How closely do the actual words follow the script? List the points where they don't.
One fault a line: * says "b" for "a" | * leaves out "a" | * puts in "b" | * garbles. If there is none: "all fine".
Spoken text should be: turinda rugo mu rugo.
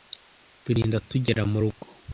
* says "tugera" for "rugo"